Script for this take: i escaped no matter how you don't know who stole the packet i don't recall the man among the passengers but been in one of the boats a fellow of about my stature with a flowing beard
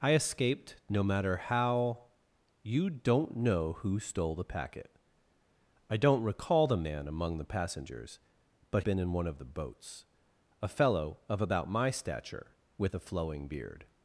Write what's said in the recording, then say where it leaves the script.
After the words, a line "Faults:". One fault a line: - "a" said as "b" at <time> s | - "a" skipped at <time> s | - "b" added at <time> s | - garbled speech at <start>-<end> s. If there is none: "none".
i escaped no matter how you don't know who stole the packet i don't recall the man among the passengers but been in one of the boats a fellow of about my stature with a flowing beard
Faults:
none